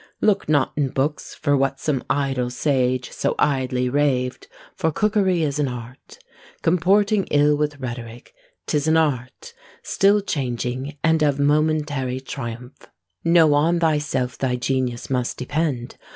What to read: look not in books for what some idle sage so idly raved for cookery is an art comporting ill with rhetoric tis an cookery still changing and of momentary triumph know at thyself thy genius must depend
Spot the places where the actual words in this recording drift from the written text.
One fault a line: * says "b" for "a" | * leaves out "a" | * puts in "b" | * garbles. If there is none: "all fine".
* says "art" for "cookery"
* says "on" for "at"